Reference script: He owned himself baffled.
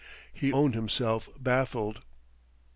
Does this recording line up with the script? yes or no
yes